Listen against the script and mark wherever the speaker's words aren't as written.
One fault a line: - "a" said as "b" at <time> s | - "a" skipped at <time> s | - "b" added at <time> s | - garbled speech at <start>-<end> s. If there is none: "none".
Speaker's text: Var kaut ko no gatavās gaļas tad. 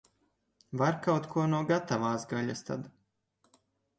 none